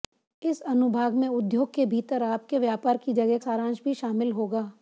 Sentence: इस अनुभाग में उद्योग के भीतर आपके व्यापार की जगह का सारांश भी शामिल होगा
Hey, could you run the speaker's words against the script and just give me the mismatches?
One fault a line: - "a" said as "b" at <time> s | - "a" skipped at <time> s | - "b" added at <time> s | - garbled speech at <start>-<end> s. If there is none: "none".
- "का" skipped at 3.4 s